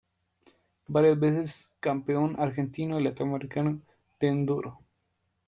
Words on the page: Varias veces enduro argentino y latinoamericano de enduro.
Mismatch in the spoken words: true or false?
true